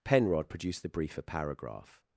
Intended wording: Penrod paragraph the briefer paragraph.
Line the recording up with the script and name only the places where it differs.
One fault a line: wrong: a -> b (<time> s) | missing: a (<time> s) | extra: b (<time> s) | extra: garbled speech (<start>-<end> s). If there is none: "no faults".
wrong: paragraph -> produced (0.5 s)